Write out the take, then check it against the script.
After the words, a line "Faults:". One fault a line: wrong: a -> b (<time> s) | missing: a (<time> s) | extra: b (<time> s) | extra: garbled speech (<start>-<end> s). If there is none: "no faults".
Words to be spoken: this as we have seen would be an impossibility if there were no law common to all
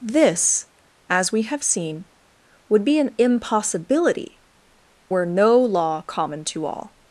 this as we have seen would be an impossibility were no law common to all
Faults:
missing: if there (4.4 s)